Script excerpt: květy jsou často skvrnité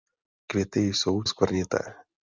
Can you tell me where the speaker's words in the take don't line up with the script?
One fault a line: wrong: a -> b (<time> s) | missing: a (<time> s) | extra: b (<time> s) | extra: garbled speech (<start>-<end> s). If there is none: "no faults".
missing: často (1.2 s)